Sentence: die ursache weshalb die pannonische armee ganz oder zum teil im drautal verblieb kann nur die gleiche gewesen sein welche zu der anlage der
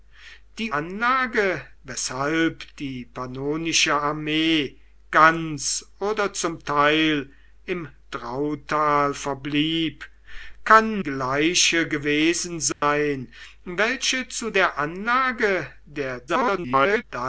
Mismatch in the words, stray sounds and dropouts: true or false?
true